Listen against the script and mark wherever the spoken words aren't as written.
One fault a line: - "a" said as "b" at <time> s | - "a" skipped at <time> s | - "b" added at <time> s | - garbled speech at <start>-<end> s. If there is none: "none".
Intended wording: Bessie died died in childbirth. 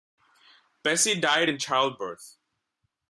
- "died" skipped at 1.5 s